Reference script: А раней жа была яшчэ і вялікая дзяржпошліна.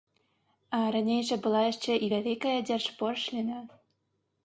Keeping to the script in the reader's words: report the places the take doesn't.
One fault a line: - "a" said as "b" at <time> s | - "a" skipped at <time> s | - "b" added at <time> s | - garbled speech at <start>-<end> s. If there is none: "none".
none